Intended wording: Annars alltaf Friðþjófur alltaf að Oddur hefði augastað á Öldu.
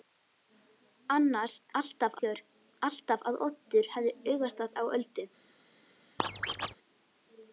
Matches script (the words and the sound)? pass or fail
fail